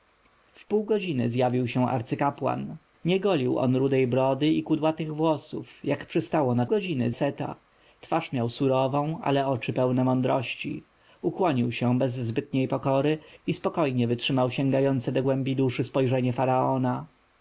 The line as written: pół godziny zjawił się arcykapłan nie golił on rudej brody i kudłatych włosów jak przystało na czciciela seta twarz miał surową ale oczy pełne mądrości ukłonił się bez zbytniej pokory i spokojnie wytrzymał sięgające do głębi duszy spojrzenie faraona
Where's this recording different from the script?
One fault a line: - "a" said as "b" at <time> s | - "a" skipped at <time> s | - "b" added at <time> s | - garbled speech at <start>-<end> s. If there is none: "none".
- "czciciela" said as "godziny" at 6.6 s